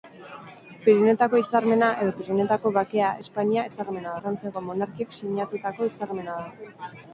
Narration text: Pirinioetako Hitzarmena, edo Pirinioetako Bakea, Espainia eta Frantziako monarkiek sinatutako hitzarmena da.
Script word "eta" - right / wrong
wrong